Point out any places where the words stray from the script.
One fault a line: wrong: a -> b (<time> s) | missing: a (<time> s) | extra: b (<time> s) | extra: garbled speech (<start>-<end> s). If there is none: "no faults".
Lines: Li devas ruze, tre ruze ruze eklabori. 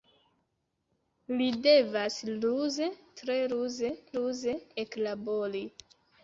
no faults